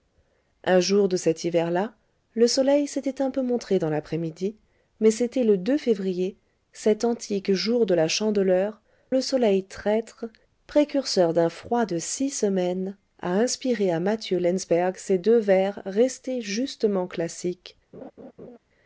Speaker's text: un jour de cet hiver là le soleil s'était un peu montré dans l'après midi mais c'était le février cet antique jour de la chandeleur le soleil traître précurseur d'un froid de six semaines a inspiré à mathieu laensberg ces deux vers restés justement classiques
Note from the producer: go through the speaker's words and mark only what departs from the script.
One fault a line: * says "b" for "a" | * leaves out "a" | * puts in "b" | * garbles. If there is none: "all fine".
all fine